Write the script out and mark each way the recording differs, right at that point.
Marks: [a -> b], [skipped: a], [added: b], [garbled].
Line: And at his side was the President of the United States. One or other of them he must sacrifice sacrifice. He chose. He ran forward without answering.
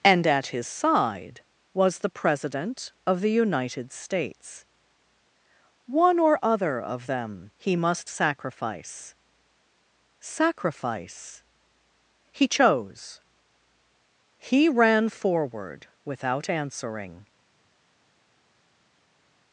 And at his side was the President of the United States. One or other of them he must sacrifice sacrifice. He chose. He ran forward without answering.